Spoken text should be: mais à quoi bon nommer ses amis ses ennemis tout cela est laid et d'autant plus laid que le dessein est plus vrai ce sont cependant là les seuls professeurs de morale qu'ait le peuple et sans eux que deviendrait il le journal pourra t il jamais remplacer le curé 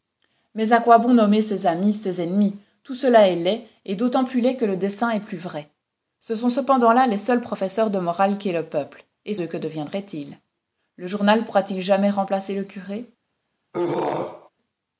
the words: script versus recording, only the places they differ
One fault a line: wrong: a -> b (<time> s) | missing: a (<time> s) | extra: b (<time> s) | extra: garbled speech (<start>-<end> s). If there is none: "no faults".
missing: sans (9.3 s)